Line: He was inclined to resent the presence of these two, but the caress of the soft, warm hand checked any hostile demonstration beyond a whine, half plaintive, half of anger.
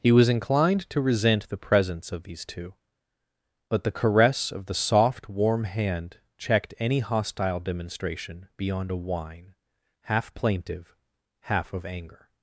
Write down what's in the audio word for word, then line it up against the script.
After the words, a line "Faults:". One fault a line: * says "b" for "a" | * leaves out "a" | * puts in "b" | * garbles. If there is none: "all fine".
He was inclined to resent the presence of these two, but the caress of the soft, warm hand checked any hostile demonstration beyond a whine, half plaintive, half of anger.
Faults:
all fine